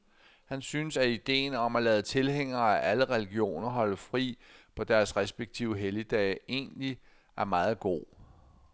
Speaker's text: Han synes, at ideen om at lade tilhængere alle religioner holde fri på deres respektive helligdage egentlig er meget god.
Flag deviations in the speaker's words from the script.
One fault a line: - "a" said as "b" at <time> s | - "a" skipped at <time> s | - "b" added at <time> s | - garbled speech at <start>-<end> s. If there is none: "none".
- "af" added at 2.8 s